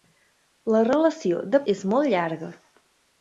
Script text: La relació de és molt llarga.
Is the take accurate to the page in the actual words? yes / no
yes